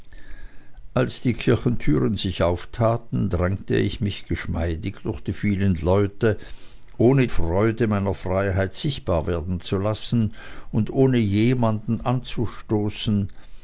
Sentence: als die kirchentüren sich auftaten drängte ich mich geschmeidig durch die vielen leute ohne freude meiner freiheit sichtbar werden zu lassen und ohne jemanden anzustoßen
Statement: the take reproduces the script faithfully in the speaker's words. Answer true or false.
true